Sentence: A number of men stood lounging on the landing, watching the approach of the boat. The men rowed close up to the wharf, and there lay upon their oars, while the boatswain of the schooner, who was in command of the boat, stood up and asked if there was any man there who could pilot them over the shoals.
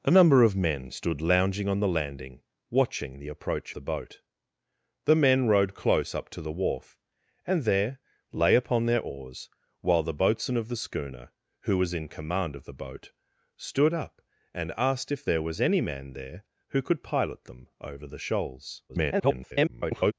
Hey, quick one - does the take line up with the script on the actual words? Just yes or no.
no